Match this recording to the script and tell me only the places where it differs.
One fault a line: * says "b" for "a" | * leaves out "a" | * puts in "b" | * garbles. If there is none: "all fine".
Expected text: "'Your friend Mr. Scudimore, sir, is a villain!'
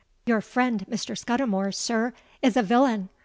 all fine